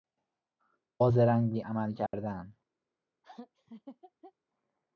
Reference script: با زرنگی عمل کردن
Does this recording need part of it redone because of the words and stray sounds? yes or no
yes